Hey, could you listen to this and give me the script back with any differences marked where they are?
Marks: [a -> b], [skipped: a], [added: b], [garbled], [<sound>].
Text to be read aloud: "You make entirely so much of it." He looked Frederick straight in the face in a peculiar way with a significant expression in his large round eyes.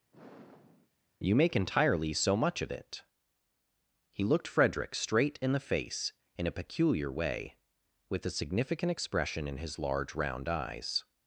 [sigh] "You make entirely so much of it." He looked Frederick straight in the face in a peculiar way with a significant expression in his large round eyes.